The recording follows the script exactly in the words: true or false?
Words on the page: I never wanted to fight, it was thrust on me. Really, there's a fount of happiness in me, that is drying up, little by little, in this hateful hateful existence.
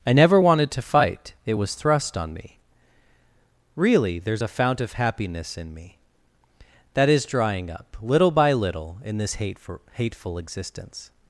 true